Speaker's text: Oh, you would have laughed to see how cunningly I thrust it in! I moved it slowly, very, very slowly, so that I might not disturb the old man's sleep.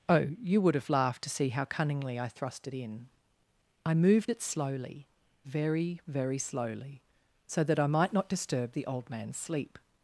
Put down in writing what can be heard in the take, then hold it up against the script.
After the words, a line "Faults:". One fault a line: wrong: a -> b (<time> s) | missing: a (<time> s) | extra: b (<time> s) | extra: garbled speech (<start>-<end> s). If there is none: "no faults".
Oh, you would have laughed to see how cunningly I thrust it in! I moved it slowly, very, very slowly, so that I might not disturb the old man's sleep.
Faults:
no faults